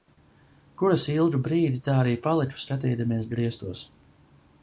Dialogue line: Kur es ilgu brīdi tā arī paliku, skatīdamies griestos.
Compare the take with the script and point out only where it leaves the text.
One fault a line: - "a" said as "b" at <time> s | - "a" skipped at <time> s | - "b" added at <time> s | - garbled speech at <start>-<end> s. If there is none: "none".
none